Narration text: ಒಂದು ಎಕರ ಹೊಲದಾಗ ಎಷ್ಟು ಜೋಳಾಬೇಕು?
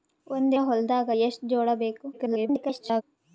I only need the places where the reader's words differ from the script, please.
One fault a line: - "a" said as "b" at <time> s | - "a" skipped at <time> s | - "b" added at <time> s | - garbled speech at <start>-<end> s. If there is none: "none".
- "ಎಕರ" skipped at 0.6 s
- garbled speech at 2.1-3.0 s